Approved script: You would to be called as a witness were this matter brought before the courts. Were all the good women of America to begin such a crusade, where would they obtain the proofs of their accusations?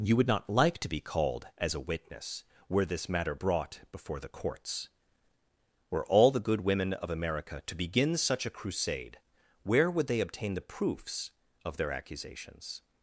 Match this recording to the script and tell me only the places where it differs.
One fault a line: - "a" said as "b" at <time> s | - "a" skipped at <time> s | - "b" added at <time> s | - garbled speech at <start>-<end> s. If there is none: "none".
- "not like" added at 0.3 s